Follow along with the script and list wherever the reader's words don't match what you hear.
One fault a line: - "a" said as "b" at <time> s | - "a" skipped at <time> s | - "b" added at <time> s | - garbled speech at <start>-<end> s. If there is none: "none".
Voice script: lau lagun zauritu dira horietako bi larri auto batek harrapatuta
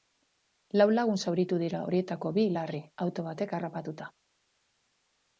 none